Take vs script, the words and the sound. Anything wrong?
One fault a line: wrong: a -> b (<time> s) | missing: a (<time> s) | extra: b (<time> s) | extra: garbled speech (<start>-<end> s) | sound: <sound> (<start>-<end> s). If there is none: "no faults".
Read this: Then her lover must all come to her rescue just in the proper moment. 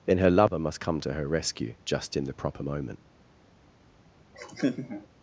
missing: all (0.8 s)
sound: laugh (4.3-5.1 s)